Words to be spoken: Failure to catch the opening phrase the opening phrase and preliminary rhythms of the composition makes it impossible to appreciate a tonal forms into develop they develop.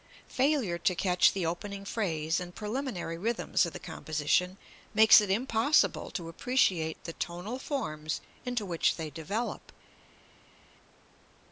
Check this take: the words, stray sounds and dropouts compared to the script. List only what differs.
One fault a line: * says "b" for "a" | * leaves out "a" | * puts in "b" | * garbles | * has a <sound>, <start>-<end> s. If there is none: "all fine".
* leaves out "the opening phrase"
* says "the" for "a"
* says "which" for "develop"